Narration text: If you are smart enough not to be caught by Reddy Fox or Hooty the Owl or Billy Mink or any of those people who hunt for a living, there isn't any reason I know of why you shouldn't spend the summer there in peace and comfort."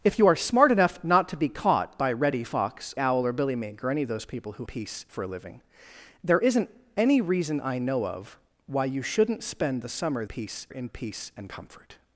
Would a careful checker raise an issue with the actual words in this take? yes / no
yes